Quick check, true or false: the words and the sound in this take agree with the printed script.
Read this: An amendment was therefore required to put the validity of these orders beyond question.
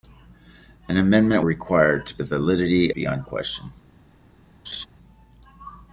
false